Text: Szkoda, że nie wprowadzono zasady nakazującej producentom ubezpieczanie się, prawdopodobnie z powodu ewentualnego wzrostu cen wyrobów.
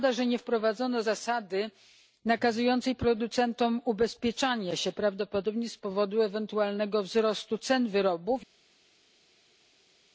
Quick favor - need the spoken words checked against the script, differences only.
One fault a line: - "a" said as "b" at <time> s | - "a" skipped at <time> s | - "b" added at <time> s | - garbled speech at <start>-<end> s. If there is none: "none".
none